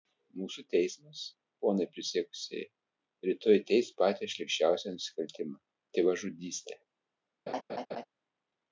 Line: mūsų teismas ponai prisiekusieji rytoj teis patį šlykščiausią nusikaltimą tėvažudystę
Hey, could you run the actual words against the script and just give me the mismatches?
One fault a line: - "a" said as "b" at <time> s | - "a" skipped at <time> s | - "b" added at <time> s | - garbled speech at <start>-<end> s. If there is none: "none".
none